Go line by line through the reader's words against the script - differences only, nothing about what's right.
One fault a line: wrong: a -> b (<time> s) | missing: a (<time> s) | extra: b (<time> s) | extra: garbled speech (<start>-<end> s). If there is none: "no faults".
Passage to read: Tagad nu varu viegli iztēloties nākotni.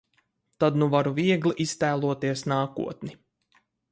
wrong: Tagad -> Tad (0.6 s)